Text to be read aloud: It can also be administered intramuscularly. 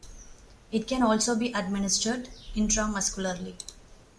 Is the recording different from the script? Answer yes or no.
no